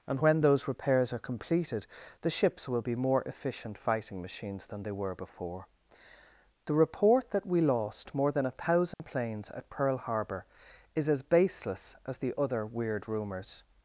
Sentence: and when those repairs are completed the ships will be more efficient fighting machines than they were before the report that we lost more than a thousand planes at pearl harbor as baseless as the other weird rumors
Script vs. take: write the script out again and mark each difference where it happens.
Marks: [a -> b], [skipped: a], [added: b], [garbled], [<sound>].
and when those repairs are completed the ships will be more efficient fighting machines than they were before the report that we lost more than a thousand [dropout] planes at pearl harbor [added: is] as baseless as the other weird rumors